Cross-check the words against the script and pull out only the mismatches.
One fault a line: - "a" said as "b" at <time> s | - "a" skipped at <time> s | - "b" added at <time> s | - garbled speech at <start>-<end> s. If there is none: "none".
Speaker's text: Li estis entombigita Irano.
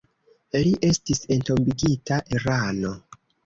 none